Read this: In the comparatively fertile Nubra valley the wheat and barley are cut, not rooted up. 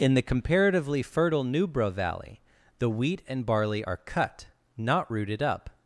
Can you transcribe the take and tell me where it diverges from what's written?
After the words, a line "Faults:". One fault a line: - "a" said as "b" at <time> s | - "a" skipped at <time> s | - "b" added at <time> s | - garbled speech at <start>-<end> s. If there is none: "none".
In the comparatively fertile Nubra valley the wheat and barley are cut, not rooted up.
Faults:
none